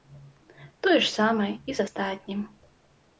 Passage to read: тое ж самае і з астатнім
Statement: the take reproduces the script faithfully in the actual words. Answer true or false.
true